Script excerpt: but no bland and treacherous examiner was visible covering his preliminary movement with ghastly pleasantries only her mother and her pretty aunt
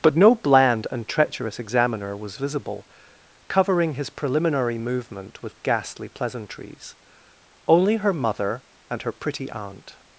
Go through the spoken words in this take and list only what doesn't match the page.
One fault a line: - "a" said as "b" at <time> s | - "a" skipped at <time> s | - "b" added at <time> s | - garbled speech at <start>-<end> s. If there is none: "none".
none